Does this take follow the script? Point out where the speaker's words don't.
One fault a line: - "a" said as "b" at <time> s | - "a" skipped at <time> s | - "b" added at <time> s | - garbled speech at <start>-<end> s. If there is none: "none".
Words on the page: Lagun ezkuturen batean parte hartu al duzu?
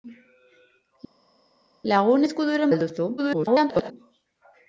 - "batean parte hartu" skipped at 2.7 s
- garbled speech at 3.2-3.9 s